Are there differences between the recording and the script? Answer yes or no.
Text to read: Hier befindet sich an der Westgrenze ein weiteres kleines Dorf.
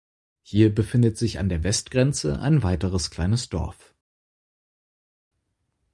no